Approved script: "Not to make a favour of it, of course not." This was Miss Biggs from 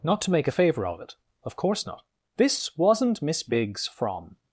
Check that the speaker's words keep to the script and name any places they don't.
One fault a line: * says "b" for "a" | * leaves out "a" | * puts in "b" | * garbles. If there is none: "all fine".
* says "wasn't" for "was"